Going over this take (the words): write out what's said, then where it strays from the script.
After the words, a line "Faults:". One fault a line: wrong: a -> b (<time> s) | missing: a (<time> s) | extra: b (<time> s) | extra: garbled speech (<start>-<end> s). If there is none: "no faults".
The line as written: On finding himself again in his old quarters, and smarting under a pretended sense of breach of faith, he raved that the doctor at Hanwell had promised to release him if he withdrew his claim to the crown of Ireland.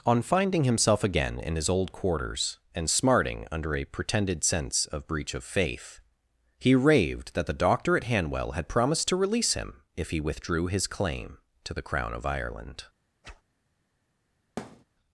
On finding himself again in his old quarters, and smarting under a pretended sense of breach of faith, he raved that the doctor at Hanwell had promised to release him if he withdrew his claim to the crown of Ireland.
Faults:
no faults